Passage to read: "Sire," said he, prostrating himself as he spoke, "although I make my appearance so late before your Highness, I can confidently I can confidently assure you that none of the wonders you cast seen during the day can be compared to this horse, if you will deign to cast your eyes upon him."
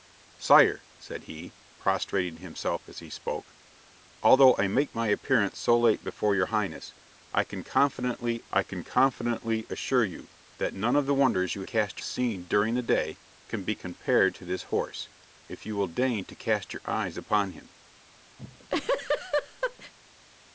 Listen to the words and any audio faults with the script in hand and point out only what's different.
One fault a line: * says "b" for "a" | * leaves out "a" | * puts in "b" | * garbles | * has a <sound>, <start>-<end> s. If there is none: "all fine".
* has a laugh, 18.4-19.9 s